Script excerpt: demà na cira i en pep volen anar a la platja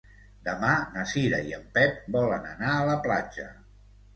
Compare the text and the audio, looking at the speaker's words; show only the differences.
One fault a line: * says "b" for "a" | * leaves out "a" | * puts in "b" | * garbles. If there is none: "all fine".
all fine